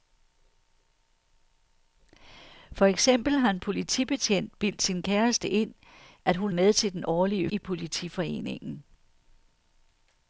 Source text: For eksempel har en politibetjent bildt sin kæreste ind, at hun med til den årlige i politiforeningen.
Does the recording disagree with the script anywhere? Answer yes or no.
no